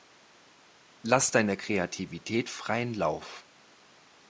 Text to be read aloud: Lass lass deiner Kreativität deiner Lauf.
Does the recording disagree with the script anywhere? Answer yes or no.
yes